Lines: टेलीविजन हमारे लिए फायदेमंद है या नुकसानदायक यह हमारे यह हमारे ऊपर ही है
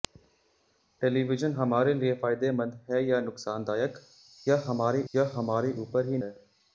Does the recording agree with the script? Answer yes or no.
yes